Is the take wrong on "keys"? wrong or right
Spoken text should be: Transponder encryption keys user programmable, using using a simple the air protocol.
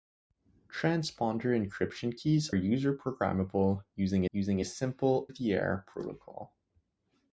right